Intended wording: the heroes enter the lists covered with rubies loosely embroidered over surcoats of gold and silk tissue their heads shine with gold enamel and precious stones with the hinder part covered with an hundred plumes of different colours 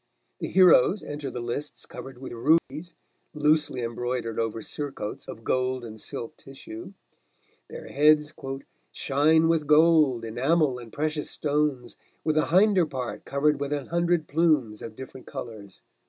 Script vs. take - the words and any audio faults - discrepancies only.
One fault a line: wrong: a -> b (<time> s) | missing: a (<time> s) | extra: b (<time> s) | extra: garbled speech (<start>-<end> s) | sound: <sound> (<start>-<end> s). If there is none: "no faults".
sound: dropout (2.6-2.7 s)